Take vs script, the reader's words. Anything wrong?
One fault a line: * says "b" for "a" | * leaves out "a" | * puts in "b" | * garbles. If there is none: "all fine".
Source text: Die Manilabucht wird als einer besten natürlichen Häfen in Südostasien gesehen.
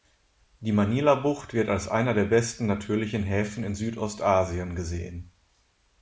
* puts in "der"